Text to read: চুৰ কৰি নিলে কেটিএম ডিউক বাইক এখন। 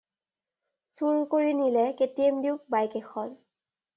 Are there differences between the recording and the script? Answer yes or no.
no